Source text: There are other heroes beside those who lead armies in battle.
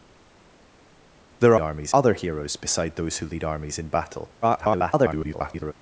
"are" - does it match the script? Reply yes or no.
no